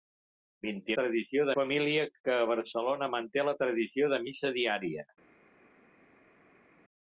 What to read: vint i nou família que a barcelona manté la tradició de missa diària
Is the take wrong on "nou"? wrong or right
wrong